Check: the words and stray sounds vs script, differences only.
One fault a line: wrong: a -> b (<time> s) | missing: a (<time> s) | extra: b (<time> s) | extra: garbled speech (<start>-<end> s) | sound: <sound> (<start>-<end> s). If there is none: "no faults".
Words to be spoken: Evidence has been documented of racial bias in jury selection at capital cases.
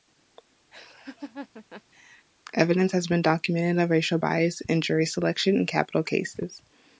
sound: laugh (0.7-2.3 s)
wrong: at -> in (5.5 s)